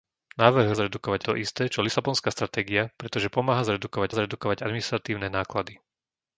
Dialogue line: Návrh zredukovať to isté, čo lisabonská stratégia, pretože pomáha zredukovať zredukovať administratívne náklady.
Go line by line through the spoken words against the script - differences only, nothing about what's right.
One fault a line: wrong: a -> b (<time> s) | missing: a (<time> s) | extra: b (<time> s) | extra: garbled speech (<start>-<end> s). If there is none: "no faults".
no faults